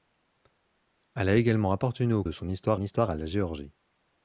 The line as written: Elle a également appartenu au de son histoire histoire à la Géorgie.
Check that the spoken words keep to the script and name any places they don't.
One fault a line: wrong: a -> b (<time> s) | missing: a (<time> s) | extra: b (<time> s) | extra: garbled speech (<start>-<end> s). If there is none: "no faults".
no faults